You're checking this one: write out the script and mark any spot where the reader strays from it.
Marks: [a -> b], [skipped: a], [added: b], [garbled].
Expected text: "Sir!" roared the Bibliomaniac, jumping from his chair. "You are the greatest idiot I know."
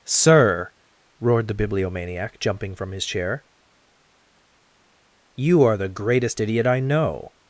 "Sir!" roared the Bibliomaniac, jumping from his chair. "You are the greatest idiot I know."